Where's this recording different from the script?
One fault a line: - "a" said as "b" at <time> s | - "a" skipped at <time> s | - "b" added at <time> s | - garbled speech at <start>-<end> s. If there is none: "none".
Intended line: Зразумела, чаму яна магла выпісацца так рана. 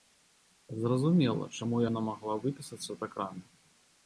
none